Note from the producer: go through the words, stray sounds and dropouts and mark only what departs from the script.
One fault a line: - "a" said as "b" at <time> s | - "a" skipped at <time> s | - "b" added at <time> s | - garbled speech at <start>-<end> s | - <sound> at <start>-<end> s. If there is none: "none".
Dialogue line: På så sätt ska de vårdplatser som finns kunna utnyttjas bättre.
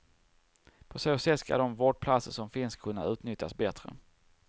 none